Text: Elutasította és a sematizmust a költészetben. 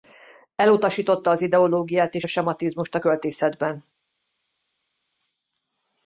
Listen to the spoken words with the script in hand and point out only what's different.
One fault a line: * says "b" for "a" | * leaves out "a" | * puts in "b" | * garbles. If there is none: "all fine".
* puts in "az ideológiát"